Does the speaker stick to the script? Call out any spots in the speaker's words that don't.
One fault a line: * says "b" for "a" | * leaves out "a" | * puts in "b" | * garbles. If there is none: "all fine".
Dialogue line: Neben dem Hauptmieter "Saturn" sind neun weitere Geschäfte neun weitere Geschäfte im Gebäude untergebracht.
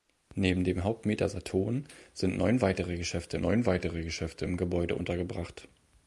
all fine